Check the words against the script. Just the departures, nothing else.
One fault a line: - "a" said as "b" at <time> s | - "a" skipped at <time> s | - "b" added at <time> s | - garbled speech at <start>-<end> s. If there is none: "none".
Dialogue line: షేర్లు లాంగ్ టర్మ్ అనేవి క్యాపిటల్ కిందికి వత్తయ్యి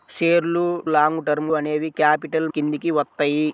none